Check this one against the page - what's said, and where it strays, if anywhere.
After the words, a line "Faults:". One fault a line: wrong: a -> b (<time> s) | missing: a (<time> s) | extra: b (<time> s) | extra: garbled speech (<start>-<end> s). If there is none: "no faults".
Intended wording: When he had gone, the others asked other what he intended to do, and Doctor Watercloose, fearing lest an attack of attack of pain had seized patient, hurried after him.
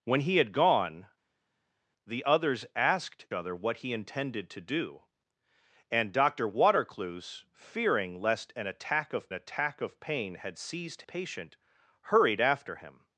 When he had gone, the others asked other what he intended to do, and Doctor Watercloose, fearing lest an attack of attack of pain had seized patient, hurried after him.
Faults:
no faults